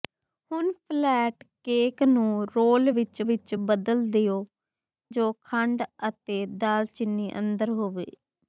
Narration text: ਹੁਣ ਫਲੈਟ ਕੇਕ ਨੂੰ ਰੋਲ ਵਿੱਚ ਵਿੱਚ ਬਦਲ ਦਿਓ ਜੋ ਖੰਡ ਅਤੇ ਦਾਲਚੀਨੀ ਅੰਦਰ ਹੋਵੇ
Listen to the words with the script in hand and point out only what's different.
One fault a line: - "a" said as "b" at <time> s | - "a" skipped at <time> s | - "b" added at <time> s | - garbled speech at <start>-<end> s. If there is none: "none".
none